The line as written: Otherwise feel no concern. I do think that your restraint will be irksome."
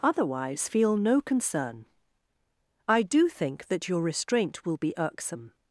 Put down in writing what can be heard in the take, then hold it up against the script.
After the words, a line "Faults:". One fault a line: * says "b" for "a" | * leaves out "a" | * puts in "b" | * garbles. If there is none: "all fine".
Otherwise feel no concern. I do think that your restraint will be irksome."
Faults:
all fine